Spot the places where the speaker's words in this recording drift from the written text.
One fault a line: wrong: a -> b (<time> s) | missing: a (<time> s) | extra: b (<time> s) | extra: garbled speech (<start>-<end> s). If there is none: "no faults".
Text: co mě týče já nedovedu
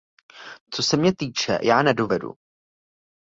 extra: se (0.8 s)